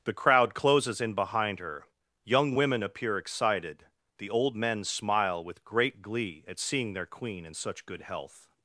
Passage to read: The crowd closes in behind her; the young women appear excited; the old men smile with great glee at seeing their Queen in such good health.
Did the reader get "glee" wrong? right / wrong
right